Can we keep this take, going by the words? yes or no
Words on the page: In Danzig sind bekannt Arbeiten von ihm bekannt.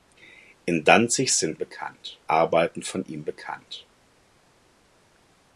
yes